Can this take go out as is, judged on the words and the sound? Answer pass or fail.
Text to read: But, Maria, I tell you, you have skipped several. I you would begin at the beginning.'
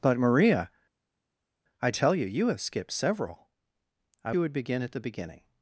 pass